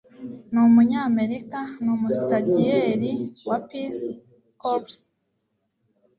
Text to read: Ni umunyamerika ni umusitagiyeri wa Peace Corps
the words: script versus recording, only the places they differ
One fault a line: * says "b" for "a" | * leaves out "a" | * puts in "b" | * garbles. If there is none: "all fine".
all fine